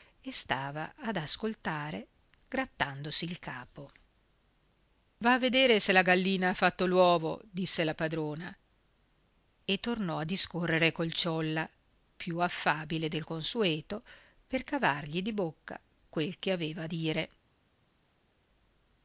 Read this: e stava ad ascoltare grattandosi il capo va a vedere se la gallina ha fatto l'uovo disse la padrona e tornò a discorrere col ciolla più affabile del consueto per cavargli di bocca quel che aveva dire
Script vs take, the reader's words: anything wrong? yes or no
no